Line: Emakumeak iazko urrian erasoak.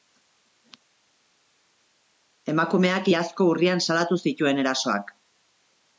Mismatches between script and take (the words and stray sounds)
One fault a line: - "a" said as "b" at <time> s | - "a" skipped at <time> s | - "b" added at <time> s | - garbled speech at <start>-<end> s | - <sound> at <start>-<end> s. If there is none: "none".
- "salatu zituen" added at 3.9 s